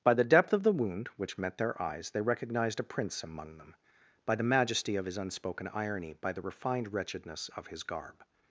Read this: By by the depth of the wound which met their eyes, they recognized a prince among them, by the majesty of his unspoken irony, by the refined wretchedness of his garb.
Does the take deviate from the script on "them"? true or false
false